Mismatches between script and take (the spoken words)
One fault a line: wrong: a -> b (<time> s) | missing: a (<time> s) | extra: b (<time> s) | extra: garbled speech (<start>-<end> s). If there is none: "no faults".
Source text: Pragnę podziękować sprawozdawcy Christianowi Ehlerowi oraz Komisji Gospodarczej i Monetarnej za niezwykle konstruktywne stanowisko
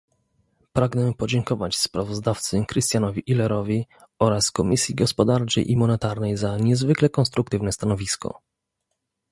no faults